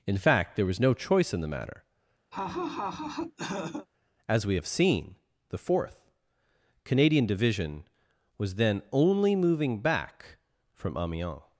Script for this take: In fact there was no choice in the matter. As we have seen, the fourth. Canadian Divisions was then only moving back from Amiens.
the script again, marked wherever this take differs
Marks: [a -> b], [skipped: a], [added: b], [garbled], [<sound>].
In fact there was no choice in the matter. [laugh] As we have seen, the fourth. Canadian [Divisions -> Division] was then only moving back from Amiens.